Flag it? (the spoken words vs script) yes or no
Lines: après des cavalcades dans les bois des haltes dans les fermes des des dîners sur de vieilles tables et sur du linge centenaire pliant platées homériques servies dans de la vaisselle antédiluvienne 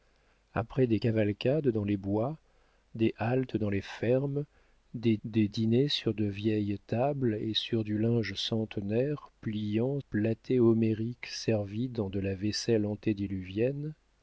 no